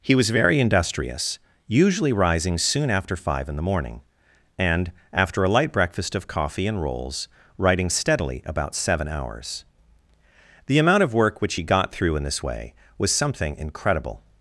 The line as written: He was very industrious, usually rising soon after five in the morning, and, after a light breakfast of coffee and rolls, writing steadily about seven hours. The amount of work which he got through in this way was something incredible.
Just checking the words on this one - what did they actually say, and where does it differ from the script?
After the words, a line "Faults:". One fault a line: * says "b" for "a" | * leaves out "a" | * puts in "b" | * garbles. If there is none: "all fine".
He was very industrious, usually rising soon after five in the morning, and, after a light breakfast of coffee and rolls, writing steadily about seven hours. The amount of work which he got through in this way was something incredible.
Faults:
all fine